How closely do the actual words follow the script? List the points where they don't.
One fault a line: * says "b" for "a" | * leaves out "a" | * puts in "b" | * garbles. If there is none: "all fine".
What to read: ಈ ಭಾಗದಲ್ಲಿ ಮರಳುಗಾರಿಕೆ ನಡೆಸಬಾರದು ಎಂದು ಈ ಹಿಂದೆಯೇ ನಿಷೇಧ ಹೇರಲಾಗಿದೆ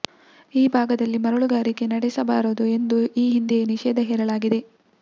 all fine